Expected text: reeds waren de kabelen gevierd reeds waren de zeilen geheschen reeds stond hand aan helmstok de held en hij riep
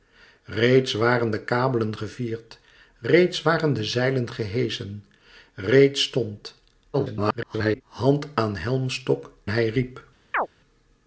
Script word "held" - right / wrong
wrong